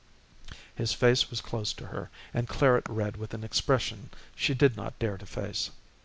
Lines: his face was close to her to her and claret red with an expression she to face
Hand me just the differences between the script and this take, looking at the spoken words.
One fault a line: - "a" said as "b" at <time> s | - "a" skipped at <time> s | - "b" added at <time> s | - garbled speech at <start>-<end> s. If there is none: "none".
- "to her" skipped at 2.1 s
- "did not dare" added at 4.5 s